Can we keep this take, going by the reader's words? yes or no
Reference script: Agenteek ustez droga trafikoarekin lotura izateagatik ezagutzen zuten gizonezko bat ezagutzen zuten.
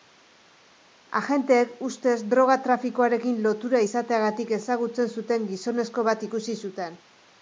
no